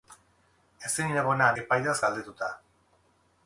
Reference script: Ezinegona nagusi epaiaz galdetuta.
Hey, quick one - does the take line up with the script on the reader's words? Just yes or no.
no